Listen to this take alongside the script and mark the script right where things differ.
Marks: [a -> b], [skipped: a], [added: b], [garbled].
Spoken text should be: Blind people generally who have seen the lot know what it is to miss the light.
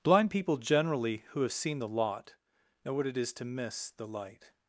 Blind people generally who have seen the lot know what it is to miss the light.